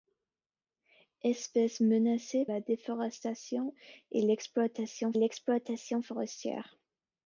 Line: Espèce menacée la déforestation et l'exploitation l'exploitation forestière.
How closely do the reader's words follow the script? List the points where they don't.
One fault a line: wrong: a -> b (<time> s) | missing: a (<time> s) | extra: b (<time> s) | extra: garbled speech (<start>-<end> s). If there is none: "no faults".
no faults